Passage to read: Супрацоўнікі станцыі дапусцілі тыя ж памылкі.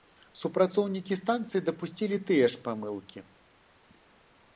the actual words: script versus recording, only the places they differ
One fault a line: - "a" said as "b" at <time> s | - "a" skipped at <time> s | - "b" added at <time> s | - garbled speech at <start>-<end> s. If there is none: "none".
none